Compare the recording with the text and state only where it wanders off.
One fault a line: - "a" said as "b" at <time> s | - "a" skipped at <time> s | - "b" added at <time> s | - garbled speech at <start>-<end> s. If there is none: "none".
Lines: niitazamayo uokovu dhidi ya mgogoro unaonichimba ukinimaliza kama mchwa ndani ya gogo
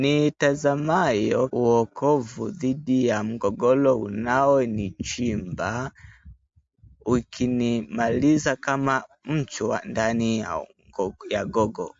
none